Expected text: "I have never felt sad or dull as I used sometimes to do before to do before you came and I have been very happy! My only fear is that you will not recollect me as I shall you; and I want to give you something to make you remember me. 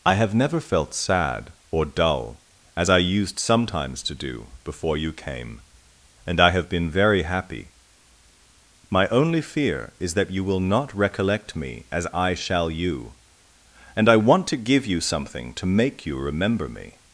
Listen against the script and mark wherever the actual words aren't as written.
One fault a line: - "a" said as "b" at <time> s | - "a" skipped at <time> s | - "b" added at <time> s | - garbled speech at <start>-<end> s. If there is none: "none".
- "to do before" skipped at 5.0 s